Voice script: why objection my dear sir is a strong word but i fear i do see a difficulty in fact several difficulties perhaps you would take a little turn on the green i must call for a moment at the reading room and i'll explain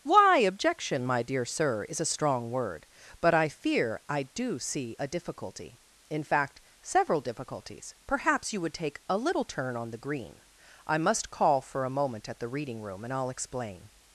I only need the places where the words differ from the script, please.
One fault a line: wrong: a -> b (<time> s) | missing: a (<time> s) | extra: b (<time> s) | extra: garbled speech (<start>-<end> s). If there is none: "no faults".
no faults